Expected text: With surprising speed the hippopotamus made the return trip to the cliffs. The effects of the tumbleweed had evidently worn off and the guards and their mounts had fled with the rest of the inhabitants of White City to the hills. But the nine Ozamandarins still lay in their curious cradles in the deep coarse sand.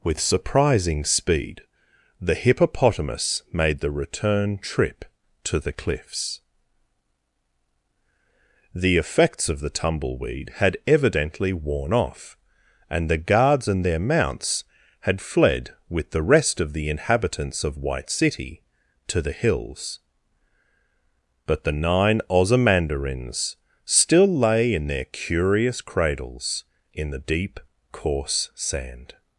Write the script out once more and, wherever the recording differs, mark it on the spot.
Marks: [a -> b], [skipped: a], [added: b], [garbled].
With surprising speed the hippopotamus made the return trip to the cliffs. The effects of the tumbleweed had evidently worn off and the guards and their mounts had fled with the rest of the inhabitants of White City to the hills. But the nine Ozamandarins still lay in their curious cradles in the deep coarse sand.